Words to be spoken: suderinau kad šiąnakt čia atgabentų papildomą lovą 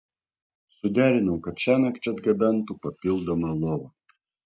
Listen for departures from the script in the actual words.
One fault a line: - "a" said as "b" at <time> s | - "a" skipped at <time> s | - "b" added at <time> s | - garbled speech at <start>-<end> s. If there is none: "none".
none